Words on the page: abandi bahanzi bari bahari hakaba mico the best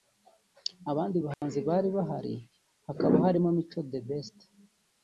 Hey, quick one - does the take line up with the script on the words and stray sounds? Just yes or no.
no